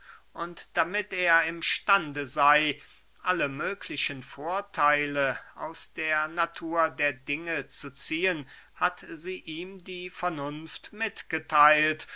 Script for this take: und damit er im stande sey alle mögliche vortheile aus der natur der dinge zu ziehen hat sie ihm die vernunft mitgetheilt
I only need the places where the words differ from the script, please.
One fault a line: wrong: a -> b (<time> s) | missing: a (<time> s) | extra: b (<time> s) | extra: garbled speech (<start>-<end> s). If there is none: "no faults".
no faults